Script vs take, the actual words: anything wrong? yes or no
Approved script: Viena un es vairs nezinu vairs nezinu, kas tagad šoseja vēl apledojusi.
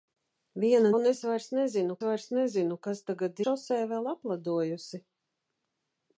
no